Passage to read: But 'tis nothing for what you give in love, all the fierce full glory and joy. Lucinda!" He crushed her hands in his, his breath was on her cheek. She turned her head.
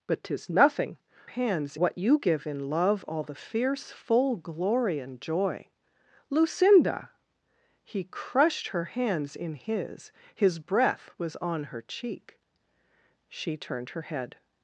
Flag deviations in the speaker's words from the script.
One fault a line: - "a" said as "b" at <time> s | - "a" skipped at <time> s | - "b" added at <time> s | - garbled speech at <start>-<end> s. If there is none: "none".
- "for" said as "hands" at 1.2 s